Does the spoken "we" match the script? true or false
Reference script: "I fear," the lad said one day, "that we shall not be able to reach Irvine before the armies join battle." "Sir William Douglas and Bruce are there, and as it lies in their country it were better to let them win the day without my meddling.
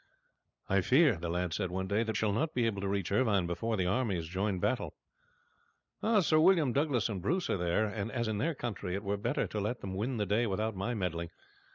false